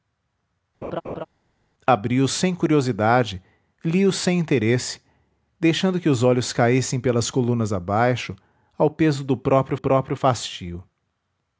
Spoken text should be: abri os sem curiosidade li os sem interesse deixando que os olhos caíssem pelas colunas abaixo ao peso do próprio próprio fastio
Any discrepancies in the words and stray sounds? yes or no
yes